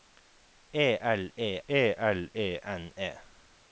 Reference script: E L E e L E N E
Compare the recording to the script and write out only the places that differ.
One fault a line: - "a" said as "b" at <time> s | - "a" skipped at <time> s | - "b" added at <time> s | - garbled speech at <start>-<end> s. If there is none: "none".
none